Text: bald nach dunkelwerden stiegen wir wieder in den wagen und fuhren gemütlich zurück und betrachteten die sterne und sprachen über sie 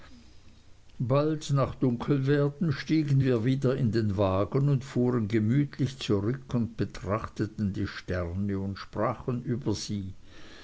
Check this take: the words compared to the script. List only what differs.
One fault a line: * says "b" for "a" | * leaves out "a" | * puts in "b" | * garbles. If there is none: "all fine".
all fine